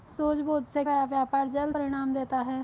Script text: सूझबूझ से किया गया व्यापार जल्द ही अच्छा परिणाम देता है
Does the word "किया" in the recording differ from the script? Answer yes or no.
yes